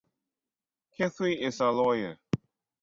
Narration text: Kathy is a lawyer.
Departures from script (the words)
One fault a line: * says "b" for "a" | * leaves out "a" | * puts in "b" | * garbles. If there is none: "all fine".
all fine